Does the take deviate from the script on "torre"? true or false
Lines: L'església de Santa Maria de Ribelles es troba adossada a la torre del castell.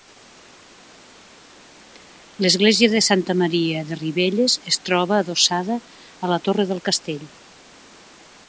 false